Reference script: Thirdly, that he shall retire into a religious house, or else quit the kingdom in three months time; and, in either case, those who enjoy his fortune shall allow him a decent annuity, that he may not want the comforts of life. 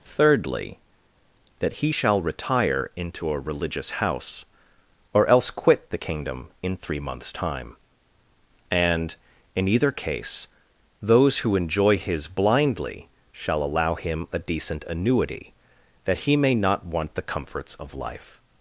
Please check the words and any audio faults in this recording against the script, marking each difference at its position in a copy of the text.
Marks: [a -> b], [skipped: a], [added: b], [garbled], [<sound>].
Thirdly, that he shall retire into a religious house, or else quit the kingdom in three months time; and, in either case, those who enjoy his [fortune -> blindly] shall allow him a decent annuity, that he may not want the comforts of life.